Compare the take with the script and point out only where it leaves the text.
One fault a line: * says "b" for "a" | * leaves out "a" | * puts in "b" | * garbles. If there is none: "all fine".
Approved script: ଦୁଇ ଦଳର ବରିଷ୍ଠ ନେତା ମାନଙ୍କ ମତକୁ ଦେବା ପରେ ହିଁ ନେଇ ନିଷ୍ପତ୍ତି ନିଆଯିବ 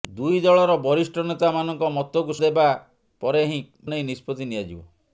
all fine